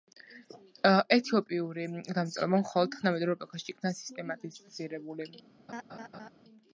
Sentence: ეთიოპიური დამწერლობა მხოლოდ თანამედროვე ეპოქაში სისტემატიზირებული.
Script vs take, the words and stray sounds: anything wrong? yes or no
yes